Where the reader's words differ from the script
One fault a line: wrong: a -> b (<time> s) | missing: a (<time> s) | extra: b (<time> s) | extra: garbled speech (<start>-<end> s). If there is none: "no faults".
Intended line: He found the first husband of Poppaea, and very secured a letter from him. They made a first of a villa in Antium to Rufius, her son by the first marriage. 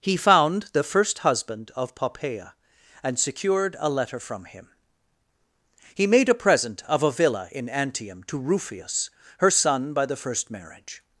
missing: very (3.2 s)
wrong: They -> He (5.9 s)
wrong: first -> present (6.3 s)